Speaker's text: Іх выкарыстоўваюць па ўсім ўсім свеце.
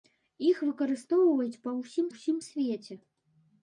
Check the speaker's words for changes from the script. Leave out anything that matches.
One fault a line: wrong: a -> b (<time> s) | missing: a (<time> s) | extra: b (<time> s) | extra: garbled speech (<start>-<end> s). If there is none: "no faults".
no faults